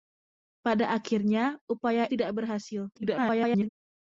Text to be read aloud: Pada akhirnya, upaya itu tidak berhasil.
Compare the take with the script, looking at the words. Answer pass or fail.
fail